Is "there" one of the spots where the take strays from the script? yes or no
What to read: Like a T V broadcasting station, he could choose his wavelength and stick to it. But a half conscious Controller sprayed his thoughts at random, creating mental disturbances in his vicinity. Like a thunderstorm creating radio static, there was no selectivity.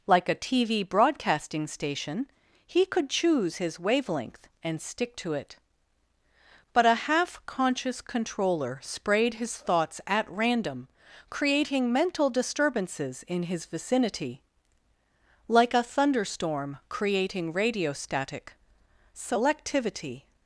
yes